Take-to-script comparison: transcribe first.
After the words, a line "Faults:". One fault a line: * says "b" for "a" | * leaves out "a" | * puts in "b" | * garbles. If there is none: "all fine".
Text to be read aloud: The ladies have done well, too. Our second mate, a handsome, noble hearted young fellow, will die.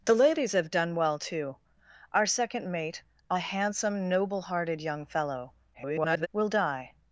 The ladies have done well, too. Our second mate, a handsome, noble hearted young fellow, [garbled] will die.
Faults:
* garbles